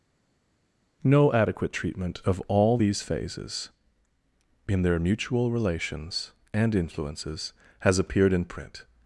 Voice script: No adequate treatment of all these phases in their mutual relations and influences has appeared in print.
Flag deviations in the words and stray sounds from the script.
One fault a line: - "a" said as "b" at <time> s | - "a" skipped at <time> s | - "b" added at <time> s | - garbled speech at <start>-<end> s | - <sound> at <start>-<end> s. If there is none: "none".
none